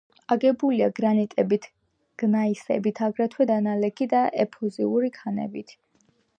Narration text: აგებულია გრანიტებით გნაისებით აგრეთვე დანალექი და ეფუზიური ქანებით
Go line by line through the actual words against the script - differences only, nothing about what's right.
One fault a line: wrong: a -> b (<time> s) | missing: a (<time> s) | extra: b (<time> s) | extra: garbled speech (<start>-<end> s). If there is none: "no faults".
no faults